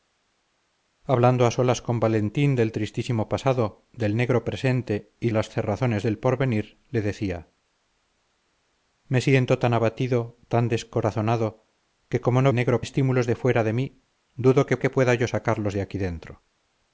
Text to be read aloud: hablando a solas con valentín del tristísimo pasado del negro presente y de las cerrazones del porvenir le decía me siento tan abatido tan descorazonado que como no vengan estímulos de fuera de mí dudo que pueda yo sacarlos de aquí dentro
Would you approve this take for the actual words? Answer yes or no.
no